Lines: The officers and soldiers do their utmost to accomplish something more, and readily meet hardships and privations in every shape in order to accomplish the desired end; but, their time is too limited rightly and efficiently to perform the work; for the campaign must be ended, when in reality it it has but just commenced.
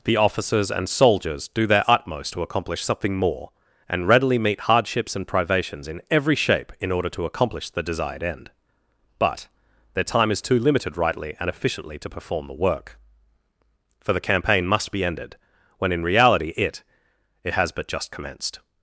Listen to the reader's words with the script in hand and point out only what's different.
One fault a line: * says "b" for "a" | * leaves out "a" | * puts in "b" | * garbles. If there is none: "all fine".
all fine